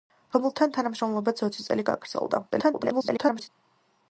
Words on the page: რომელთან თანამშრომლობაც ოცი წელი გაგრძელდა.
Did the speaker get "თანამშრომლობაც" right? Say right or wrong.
right